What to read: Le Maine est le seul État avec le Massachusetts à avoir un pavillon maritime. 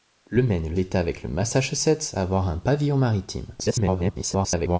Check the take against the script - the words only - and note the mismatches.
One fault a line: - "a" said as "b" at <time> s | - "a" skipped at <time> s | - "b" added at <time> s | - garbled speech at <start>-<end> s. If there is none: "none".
- "seul" skipped at 0.8 s
- garbled speech at 3.6-4.8 s